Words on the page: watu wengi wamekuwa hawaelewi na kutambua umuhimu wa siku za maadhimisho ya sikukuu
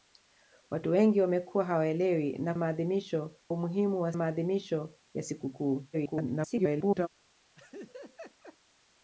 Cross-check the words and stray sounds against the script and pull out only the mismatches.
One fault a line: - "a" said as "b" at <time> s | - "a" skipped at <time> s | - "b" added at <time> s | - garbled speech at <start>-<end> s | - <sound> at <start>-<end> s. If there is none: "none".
- "kutambua" said as "maadhimisho" at 2.6 s
- "siku za" skipped at 4.1 s
- garbled speech at 5.9-7.1 s
- laugh at 7.6-8.6 s